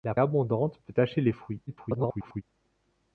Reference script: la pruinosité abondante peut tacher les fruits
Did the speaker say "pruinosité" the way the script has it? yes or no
no